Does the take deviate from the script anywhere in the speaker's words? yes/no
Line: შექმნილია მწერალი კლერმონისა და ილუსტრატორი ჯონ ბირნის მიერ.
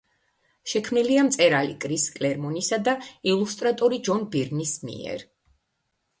yes